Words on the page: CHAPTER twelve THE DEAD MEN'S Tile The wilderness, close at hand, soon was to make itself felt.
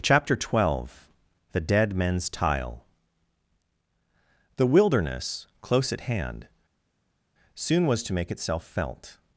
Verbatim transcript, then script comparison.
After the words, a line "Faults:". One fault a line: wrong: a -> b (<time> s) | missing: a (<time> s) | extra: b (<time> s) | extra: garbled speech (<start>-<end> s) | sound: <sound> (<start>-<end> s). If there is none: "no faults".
CHAPTER twelve THE DEAD MEN'S Tile The wilderness, close at hand, soon was to make itself felt.
Faults:
no faults